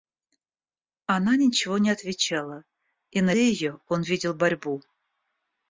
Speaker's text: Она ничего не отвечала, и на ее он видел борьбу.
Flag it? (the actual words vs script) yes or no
no